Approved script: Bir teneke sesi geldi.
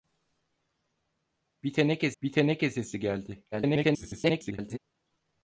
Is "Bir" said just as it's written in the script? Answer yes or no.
yes